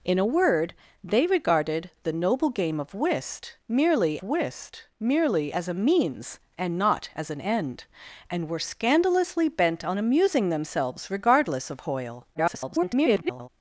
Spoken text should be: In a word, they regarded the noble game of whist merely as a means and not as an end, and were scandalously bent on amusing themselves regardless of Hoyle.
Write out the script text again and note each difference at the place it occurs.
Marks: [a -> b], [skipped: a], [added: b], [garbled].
In a word, they regarded the noble game of whist merely [added: whist merely] as a means and not as an end, and were scandalously bent on amusing themselves regardless of Hoyle. [garbled]